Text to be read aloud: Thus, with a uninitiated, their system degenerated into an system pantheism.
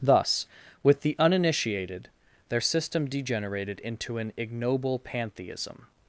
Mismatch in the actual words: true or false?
true